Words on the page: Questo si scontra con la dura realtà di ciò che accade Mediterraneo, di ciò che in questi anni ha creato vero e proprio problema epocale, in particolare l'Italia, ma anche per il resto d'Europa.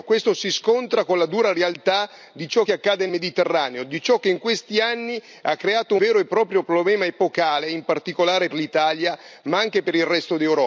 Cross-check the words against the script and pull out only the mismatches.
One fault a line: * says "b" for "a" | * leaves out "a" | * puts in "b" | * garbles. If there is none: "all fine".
all fine